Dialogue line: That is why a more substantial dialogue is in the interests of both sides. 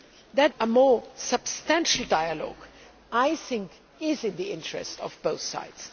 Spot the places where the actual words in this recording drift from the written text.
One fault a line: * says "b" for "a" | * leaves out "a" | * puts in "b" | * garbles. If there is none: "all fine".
* leaves out "is why"